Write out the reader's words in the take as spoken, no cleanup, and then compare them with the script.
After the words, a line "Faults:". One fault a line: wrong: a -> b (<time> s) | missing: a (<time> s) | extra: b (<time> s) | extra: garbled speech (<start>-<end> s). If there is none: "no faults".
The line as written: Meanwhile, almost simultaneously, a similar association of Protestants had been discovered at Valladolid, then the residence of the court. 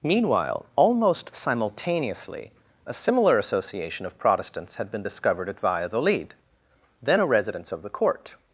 Meanwhile, almost simultaneously, a similar association of Protestants had been discovered at Valladolid, then a residence of the court.
Faults:
wrong: the -> a (7.2 s)